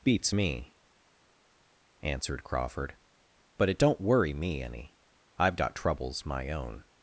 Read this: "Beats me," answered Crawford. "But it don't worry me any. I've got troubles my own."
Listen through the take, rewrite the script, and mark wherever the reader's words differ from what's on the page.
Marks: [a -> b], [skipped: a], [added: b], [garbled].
"Beats me," answered Crawford. "But it don't worry me any. I've got troubles my own."